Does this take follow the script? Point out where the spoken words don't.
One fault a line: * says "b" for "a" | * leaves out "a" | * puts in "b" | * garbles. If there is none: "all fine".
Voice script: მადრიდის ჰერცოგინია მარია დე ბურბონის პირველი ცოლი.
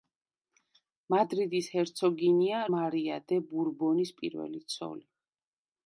all fine